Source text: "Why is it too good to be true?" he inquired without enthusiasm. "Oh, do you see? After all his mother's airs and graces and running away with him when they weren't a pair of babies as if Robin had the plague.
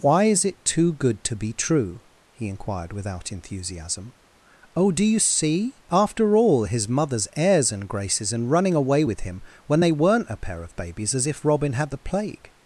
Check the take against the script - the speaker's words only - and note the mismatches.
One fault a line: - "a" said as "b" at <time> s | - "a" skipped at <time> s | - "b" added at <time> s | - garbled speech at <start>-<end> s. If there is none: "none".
none